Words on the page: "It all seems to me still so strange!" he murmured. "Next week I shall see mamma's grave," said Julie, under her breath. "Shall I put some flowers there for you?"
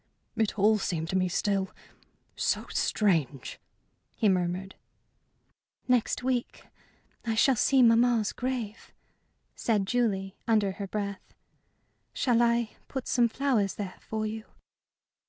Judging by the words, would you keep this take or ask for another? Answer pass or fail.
pass